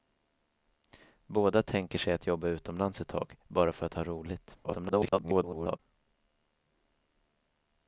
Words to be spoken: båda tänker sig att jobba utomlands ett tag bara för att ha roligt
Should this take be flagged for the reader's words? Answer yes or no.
yes